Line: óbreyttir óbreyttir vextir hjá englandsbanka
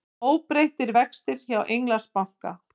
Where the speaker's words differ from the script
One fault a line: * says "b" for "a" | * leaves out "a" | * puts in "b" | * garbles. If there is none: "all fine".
* leaves out "óbreyttir"